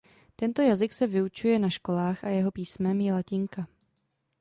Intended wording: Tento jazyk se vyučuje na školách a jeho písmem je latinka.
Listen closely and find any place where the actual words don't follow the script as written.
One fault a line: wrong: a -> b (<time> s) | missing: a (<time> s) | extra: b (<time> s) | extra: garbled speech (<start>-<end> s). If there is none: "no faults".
no faults